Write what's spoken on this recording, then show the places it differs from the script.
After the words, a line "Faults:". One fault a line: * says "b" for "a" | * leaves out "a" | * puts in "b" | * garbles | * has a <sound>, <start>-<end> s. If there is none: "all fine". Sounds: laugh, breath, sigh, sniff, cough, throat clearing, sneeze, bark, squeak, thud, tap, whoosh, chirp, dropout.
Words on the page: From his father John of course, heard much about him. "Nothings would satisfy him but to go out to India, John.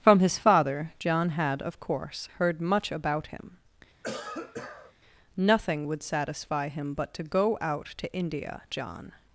From his father John had, of course, heard much about him. "Nothing would satisfy him but to go out to India, John.
Faults:
* puts in "had"
* has a cough, 4.0-4.9 s
* says "Nothing" for "Nothings"